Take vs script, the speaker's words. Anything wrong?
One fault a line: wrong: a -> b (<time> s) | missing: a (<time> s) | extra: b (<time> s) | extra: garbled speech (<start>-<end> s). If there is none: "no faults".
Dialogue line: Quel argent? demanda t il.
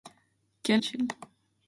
missing: argent demanda (0.8 s)